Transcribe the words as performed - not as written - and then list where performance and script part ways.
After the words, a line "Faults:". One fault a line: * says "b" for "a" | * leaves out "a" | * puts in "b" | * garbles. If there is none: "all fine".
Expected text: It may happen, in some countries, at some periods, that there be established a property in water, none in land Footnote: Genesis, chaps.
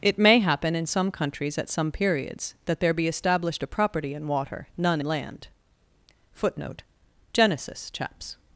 It may happen, in some countries, at some periods, that there be established a property in water, none land Footnote: Genesis, chaps.
Faults:
* leaves out "in"